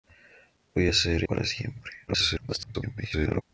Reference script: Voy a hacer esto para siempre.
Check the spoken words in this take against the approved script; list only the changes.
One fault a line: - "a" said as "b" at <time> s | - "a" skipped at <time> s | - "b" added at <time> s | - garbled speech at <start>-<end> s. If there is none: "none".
- "esto" skipped at 1.2 s
- garbled speech at 2.1-3.4 s